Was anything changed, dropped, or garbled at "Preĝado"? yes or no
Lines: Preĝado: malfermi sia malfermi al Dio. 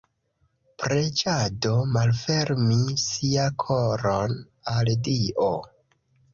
no